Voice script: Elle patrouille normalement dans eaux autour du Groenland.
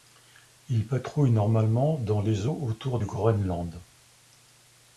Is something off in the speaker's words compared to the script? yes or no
yes